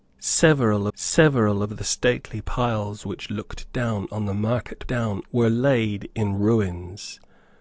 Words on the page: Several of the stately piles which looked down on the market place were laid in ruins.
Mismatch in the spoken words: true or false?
true